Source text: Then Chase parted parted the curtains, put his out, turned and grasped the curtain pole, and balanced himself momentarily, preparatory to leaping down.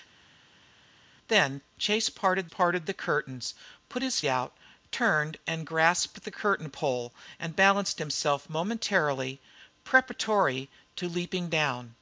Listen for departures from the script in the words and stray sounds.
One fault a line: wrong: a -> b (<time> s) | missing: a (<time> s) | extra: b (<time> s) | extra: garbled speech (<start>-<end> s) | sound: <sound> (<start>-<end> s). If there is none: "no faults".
no faults